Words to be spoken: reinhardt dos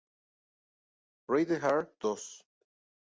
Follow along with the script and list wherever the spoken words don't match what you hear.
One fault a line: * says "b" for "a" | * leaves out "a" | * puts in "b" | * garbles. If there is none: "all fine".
all fine